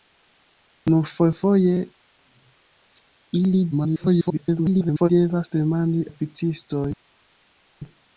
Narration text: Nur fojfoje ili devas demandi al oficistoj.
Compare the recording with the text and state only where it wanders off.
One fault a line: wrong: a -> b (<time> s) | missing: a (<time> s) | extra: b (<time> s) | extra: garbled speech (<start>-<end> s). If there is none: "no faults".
extra: garbled speech (3.7-5.1 s)
missing: al (6.0 s)